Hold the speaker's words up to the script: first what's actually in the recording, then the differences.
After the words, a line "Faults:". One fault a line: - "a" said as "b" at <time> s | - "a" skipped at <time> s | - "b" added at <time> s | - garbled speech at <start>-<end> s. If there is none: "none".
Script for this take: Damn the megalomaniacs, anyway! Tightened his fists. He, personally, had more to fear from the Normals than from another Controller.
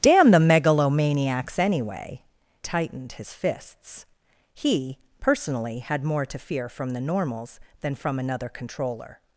Damn the megalomaniacs, anyway! Tightened his fists. He, personally, had more to fear from the Normals than from another Controller.
Faults:
none